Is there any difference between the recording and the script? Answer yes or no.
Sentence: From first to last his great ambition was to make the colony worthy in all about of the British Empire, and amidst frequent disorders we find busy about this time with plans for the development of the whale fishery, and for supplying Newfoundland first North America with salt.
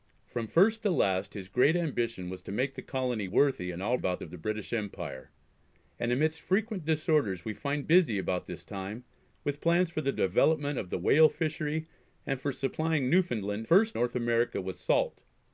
no